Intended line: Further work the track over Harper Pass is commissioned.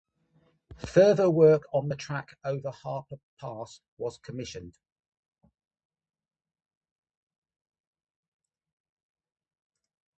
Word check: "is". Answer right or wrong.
wrong